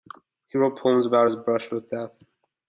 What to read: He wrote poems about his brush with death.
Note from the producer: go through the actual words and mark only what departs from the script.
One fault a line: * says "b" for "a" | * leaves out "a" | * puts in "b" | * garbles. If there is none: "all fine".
all fine